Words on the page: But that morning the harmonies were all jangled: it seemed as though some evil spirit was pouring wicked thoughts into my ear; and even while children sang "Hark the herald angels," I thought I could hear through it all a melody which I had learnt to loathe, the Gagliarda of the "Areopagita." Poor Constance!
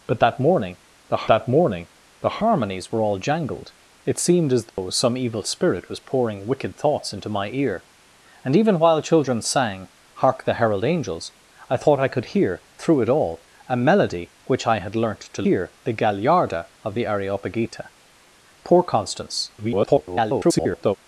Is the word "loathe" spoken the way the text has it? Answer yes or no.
no